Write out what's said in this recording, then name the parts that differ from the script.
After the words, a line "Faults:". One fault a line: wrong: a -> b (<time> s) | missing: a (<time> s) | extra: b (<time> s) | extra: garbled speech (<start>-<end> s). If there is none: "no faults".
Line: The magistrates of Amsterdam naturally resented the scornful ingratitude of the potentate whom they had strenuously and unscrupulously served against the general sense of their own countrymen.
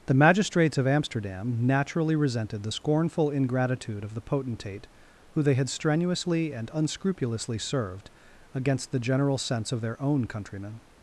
The magistrates of Amsterdam naturally resented the scornful ingratitude of the potentate who they had strenuously and unscrupulously served against the general sense of their own countrymen.
Faults:
wrong: whom -> who (5.3 s)